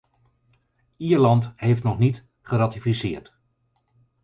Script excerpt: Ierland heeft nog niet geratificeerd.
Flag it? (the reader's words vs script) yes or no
no